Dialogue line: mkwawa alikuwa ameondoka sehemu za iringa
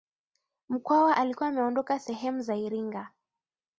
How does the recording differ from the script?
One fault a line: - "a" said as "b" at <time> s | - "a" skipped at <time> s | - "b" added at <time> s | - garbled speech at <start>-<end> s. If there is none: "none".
none